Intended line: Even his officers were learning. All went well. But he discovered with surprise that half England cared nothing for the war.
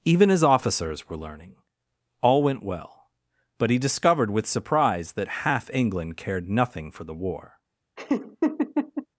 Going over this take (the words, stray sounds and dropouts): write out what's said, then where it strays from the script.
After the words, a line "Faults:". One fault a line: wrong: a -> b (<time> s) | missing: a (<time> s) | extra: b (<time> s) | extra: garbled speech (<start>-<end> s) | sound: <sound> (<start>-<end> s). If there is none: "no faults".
Even his officers were learning. All went well. But he discovered with surprise that half England cared nothing for the war.
Faults:
sound: laugh (8.0-9.1 s)